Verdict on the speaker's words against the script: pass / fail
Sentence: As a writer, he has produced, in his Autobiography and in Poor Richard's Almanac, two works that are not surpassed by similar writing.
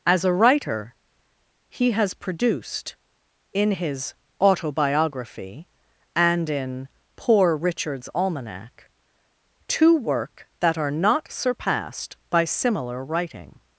fail